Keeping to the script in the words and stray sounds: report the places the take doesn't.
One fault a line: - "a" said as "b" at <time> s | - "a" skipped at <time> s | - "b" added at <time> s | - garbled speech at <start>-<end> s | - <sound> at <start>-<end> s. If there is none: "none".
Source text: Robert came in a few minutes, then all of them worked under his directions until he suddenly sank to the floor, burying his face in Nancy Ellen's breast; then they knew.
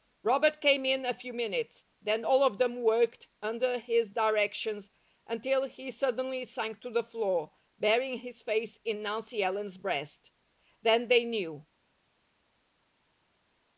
none